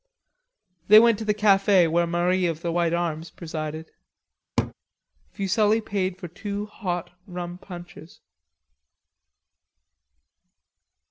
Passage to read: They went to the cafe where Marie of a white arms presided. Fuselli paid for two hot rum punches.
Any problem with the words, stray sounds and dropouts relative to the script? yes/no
yes